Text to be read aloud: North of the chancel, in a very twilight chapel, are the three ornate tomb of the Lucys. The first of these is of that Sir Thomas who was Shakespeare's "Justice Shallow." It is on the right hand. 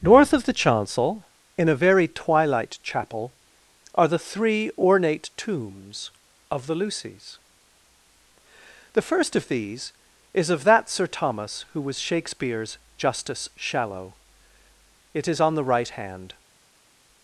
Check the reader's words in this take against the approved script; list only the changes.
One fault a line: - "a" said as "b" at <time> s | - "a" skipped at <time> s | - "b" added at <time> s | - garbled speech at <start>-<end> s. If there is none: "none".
- "tomb" said as "tombs" at 5.3 s